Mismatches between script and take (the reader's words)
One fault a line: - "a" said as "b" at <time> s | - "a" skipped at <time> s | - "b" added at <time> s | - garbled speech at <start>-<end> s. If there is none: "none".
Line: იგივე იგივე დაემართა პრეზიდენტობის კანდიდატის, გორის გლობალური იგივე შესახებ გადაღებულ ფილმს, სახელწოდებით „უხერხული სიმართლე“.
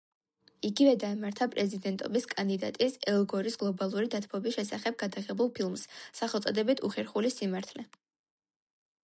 - "იგივე" skipped at 0.9 s
- "ელ" added at 3.1 s
- "იგივე" said as "დათბობის" at 4.1 s